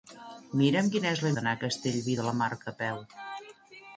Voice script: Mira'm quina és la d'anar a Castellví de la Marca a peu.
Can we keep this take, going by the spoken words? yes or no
yes